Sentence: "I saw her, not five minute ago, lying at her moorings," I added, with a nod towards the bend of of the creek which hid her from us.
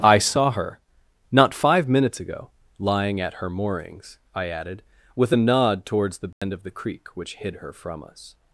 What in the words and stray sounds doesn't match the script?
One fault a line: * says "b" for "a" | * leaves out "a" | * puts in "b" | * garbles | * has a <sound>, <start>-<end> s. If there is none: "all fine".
* says "minutes" for "minute"
* has a dropout, 6.3-6.4 s
* leaves out "of"